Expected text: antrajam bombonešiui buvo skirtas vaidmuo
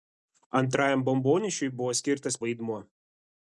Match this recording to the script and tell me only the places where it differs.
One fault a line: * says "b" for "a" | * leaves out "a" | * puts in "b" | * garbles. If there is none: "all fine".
all fine